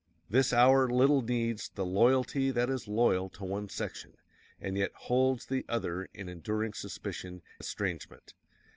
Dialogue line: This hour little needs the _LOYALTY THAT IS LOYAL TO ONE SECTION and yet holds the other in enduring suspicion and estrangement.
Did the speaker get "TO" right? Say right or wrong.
right